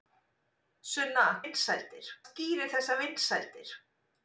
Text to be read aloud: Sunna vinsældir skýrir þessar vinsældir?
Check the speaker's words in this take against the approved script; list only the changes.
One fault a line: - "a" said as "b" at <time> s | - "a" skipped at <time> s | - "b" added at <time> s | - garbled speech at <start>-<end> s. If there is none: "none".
none